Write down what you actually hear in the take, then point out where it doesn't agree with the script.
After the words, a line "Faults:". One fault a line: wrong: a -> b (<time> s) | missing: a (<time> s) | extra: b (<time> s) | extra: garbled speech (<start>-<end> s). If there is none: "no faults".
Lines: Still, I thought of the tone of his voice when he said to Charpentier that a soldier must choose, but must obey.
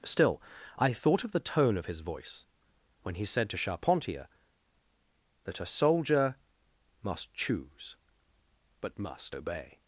Still, I thought of the tone of his voice when he said to Charpentier that a soldier must choose, but must obey.
Faults:
no faults